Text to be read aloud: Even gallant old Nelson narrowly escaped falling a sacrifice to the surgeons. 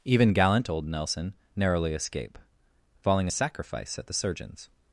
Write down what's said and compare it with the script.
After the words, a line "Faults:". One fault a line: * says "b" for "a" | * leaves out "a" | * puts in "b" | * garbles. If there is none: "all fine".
Even gallant old Nelson narrowly escape falling a sacrifice at the surgeons.
Faults:
* says "escape" for "escaped"
* says "at" for "to"